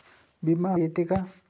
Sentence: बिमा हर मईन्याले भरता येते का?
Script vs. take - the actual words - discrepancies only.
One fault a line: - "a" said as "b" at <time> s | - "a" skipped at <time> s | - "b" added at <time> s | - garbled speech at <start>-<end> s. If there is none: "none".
- "हर मईन्याले भरता" skipped at 0.8 s